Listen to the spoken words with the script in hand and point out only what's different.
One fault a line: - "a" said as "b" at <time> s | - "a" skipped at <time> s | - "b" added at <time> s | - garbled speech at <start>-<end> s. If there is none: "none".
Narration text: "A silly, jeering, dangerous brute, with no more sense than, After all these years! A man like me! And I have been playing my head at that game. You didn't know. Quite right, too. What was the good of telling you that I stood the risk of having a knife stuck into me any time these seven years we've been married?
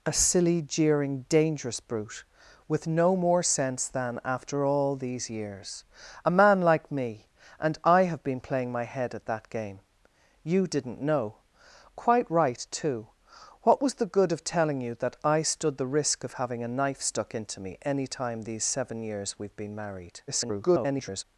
- garbled speech at 20.3-21.2 s